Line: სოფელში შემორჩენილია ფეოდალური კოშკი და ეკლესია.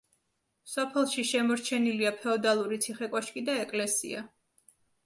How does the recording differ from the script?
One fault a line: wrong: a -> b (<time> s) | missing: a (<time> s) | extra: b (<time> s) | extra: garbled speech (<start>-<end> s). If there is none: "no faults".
extra: ციხე (2.9 s)